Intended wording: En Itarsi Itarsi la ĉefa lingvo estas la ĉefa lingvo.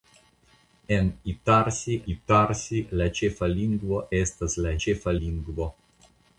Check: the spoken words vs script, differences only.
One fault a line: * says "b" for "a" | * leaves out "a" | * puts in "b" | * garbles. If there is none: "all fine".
all fine